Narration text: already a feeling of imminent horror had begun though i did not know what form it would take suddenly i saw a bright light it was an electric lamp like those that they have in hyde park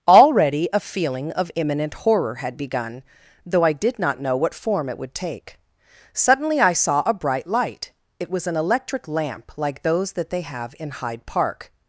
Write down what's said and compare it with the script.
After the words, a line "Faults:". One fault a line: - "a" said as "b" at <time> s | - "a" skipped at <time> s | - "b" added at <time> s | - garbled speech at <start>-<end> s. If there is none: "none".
already a feeling of imminent horror had begun though i did not know what form it would take suddenly i saw a bright light it was an electric lamp like those that they have in hyde park
Faults:
none